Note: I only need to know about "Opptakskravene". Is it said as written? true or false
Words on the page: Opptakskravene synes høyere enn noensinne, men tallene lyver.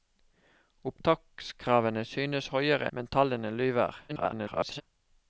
true